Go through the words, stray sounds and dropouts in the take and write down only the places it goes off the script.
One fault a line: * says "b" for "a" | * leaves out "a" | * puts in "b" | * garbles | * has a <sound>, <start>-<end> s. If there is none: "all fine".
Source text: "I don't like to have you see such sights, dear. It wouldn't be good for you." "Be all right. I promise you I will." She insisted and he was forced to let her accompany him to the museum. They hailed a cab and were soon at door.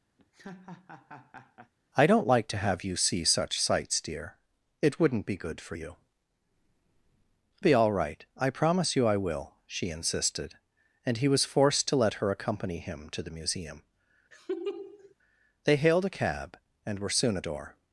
* has a laugh, 0.2-1.7 s
* has a laugh, 14.3-15.1 s